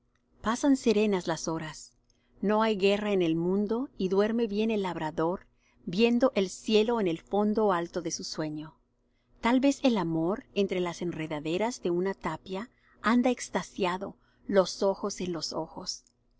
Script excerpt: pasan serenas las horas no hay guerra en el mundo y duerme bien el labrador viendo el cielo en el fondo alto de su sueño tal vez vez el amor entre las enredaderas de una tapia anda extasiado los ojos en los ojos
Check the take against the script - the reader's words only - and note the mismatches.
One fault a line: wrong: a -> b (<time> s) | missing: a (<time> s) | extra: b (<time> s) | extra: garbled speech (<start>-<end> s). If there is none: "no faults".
missing: vez (9.8 s)